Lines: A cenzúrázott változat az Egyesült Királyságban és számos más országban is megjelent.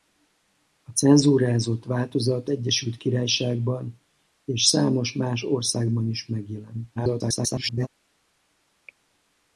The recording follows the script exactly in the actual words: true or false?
false